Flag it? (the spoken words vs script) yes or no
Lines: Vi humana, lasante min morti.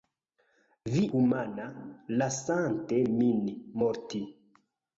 no